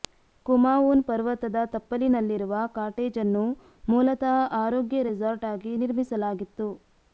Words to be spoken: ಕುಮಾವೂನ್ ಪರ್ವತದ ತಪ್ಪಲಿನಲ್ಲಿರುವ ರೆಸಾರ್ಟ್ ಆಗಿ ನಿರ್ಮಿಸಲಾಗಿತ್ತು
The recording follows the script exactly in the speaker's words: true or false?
false